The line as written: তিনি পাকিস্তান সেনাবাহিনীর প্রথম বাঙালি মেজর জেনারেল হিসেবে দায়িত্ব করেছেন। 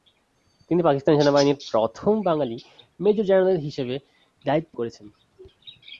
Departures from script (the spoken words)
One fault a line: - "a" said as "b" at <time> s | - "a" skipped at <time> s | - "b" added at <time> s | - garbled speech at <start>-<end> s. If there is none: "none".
none